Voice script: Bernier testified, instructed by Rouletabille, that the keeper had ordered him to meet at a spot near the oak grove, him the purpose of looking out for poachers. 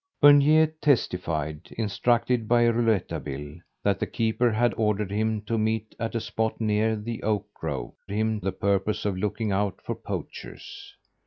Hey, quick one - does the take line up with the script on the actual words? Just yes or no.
yes